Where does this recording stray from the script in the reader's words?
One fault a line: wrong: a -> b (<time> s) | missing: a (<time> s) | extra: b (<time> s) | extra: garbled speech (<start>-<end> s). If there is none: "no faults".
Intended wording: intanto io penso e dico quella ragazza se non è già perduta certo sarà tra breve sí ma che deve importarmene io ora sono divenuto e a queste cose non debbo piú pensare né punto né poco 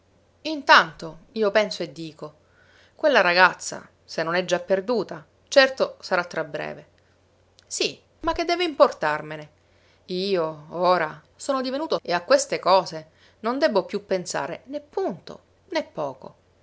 no faults